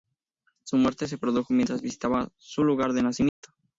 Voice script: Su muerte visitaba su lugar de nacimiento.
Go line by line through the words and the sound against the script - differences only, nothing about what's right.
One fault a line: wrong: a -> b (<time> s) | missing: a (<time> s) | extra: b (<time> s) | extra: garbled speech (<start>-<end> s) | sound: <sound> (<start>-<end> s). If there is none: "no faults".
extra: se produjo mientras (1.1 s)
sound: dropout (3.3-3.4 s)